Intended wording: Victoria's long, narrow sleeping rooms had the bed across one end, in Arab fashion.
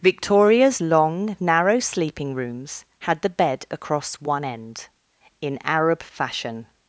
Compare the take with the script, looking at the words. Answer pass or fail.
pass